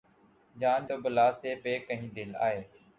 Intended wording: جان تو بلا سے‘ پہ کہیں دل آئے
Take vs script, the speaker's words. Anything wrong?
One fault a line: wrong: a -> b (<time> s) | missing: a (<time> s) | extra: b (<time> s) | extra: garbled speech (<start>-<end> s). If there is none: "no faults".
no faults